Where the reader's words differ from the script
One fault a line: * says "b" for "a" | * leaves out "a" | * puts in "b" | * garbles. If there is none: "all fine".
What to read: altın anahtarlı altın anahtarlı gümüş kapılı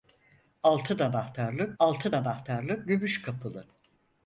all fine